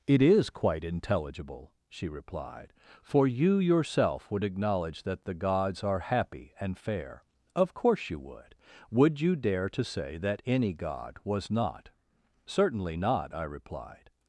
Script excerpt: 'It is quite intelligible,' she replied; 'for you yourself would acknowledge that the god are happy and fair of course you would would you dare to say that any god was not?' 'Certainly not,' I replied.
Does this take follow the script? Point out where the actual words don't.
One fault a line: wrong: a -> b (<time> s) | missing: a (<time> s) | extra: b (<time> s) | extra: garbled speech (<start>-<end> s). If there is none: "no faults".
wrong: god -> gods (5.3 s)